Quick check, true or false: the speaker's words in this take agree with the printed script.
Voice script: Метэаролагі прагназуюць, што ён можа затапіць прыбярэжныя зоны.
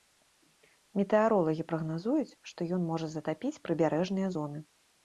true